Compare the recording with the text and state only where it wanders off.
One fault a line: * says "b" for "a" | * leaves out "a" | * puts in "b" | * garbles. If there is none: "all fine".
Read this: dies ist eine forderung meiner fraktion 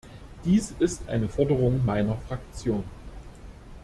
all fine